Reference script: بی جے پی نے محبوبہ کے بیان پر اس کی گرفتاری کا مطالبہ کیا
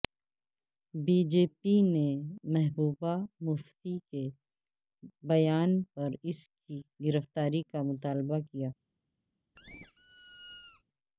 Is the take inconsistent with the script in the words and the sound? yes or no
yes